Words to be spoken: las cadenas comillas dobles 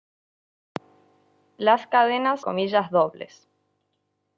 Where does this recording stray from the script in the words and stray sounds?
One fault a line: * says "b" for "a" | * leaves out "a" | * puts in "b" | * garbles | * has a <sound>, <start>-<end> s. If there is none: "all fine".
all fine